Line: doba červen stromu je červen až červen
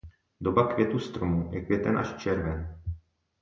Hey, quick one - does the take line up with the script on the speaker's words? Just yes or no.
no